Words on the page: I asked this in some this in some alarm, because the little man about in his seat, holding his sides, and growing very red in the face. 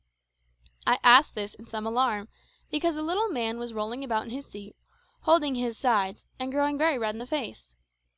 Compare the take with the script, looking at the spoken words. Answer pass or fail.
fail